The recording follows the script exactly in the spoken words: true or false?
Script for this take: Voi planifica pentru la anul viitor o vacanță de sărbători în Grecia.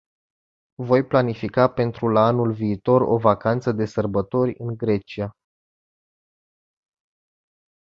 true